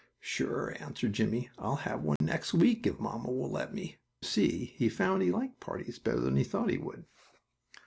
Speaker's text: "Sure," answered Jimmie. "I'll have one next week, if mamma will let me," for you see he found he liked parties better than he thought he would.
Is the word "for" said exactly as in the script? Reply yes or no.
no